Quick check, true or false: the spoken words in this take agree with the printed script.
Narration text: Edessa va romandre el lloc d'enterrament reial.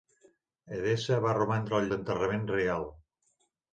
false